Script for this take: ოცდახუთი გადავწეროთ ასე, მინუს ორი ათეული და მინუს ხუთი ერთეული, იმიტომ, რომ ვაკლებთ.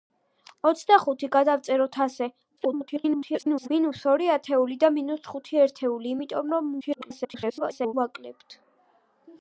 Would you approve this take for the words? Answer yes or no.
no